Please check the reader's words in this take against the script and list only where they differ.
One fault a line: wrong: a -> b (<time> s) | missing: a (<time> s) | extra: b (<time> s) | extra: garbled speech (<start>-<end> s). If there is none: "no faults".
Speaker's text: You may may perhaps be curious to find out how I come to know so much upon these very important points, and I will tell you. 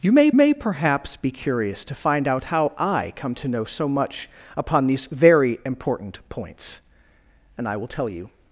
no faults